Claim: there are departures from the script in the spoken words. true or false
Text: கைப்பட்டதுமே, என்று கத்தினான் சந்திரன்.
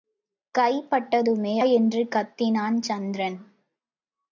false